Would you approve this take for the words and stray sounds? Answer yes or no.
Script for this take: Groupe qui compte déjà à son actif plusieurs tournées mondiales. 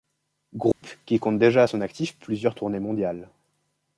no